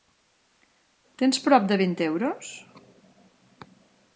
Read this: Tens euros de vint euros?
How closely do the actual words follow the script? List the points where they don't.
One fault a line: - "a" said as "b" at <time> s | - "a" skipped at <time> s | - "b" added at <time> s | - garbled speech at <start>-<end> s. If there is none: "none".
- "euros" said as "prop" at 1.5 s